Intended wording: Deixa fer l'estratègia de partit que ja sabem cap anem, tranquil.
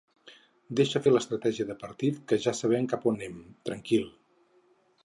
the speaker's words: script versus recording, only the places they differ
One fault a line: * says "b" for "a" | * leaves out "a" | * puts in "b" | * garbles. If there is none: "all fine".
all fine